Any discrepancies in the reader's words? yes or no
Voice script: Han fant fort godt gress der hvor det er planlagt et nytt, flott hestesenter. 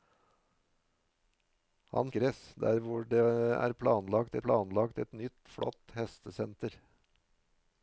yes